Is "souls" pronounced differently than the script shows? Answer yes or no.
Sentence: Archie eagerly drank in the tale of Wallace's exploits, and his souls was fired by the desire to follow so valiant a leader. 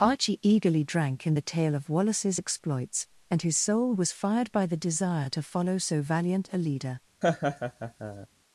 yes